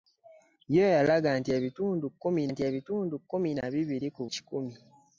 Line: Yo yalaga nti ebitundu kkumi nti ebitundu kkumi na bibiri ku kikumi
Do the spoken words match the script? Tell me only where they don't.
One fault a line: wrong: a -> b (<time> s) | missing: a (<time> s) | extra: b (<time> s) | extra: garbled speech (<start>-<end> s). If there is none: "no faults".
no faults